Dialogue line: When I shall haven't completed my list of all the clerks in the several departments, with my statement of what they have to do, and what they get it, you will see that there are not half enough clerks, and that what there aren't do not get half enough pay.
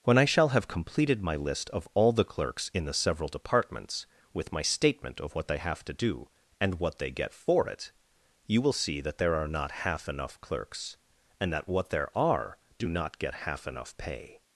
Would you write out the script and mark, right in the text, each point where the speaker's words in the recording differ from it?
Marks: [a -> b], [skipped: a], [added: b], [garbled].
When I shall [haven't -> have] completed my list of all the clerks in the several departments, with my statement of what they have to do, and what they get [added: for] it, you will see that there are not half enough clerks, and that what there [aren't -> are] do not get half enough pay.